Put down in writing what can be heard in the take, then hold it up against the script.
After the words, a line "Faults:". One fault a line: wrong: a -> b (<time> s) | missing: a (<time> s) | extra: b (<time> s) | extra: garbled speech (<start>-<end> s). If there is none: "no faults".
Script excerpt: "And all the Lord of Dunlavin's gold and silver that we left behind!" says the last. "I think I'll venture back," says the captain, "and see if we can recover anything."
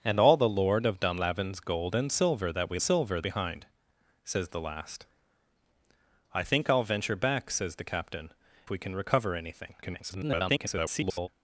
"And all the Lord of Dunlavin's gold and silver that we silver behind!" says the last. "I think I'll venture back," says the captain, "we can recover anything." [garbled]
Faults:
wrong: left -> silver (2.8 s)
missing: and see if (8.3 s)
extra: garbled speech (9.8-11.3 s)